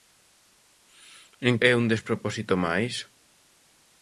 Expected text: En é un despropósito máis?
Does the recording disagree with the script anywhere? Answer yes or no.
no